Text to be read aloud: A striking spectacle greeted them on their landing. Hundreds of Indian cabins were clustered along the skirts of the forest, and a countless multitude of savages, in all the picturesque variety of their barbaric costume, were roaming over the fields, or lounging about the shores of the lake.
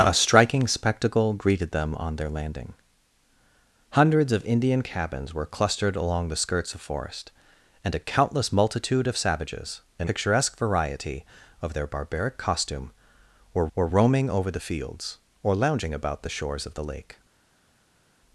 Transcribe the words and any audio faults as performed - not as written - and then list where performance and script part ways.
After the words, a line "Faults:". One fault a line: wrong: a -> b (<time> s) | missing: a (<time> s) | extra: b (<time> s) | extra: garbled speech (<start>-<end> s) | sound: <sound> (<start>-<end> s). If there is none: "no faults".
A striking spectacle greeted them on their landing. Hundreds of Indian cabins were clustered along the skirts the forest, and a countless multitude of savages, in picturesque variety of their barbaric costume, were were roaming over the fields, or lounging about the shores of the lake.
Faults:
missing: of (6.7 s)
missing: all the (10.1 s)
extra: were (13.7 s)